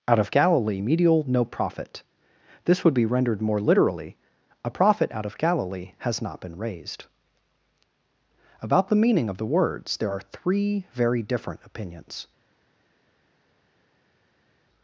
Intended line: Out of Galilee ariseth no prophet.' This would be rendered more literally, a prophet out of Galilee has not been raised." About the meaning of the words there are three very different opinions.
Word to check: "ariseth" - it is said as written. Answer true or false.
false